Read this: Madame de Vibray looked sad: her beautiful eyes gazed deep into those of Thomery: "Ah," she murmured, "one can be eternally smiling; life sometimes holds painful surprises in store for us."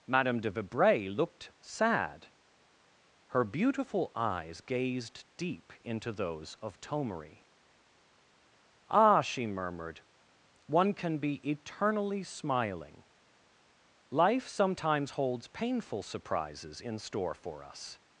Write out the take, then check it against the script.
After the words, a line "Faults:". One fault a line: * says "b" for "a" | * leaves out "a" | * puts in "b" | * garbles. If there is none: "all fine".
Madame de Vibray looked sad: her beautiful eyes gazed deep into those of Thomery: "Ah," she murmured, "one can be eternally smiling; life sometimes holds painful surprises in store for us."
Faults:
all fine